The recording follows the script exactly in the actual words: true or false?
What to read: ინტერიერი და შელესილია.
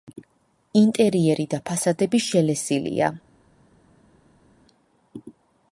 false